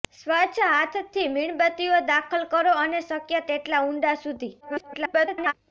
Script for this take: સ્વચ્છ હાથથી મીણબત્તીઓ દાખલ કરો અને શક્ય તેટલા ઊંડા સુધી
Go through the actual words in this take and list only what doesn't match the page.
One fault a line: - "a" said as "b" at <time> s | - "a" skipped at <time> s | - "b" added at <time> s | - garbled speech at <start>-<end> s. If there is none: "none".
- garbled speech at 4.6-5.5 s